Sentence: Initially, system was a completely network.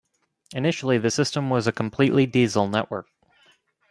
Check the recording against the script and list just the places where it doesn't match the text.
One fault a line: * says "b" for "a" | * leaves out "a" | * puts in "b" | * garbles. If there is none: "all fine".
* puts in "the"
* puts in "diesel"